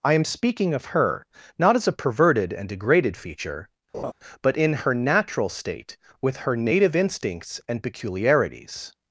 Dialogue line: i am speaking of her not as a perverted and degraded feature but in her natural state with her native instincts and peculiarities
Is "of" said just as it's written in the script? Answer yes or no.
yes